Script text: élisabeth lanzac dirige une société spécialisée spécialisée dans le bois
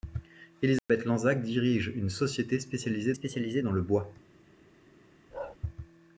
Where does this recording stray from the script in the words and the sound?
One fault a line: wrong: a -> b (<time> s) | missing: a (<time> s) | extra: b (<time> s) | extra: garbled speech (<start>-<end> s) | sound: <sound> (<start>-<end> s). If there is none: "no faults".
sound: dropout (0.8-0.9 s)
sound: bark (5.3-5.6 s)